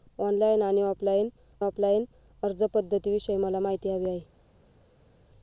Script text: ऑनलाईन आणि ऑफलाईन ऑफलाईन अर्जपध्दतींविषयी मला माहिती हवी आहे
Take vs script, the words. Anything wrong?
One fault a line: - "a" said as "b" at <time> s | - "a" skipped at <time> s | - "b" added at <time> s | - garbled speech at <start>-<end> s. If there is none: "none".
none